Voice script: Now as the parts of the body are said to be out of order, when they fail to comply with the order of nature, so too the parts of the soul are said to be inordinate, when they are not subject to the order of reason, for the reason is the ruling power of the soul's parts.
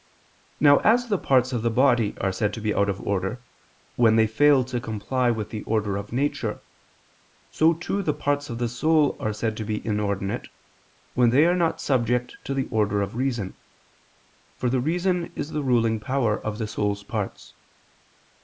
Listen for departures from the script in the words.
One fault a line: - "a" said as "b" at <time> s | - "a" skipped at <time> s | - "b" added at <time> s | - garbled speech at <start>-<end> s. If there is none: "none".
none